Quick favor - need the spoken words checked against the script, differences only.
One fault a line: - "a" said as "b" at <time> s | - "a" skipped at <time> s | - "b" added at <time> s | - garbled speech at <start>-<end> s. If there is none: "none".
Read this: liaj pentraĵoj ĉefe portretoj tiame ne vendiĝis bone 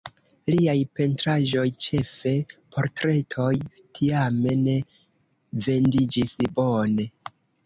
none